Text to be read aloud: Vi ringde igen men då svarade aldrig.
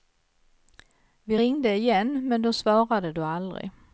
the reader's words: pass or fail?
fail